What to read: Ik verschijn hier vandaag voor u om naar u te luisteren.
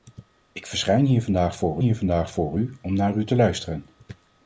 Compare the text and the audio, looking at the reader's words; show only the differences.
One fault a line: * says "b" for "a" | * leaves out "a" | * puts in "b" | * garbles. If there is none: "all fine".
* puts in "hier vandaag voor"